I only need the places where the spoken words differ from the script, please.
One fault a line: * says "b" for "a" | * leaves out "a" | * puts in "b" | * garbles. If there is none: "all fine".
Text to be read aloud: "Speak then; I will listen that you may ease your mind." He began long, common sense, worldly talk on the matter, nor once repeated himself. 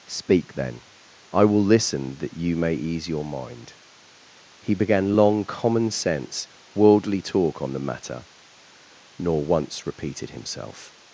all fine